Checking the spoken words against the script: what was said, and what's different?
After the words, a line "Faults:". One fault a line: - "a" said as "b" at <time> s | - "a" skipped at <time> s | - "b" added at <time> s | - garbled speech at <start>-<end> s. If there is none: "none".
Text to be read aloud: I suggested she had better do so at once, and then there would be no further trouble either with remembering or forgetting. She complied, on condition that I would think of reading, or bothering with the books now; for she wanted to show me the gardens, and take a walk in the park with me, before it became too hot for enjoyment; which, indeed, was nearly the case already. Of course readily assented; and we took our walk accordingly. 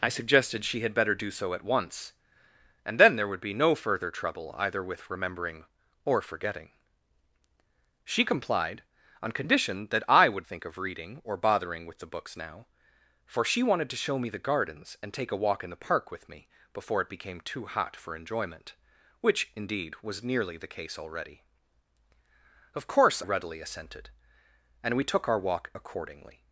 I suggested she had better do so at once, and then there would be no further trouble either with remembering or forgetting. She complied, on condition that I would think of reading, or bothering with the books now; for she wanted to show me the gardens, and take a walk in the park with me, before it became too hot for enjoyment; which, indeed, was nearly the case already. Of course readily assented; and we took our walk accordingly.
Faults:
none